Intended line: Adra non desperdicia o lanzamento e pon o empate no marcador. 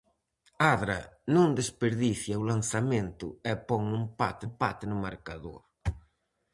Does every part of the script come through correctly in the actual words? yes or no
no